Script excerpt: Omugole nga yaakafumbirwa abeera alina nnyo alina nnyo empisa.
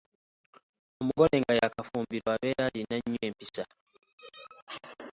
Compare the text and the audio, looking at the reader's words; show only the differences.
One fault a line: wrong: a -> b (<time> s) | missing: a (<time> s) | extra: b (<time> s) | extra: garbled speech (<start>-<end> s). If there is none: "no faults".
missing: alina nnyo (3.2 s)